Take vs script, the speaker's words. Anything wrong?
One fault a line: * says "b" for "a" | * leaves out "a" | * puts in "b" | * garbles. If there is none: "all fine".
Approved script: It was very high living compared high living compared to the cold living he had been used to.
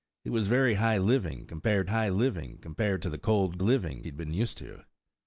all fine